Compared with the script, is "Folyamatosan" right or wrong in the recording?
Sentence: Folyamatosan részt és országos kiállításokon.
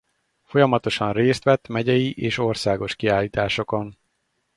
right